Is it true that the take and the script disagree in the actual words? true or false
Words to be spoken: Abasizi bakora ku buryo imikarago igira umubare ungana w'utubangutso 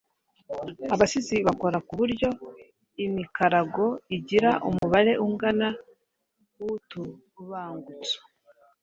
false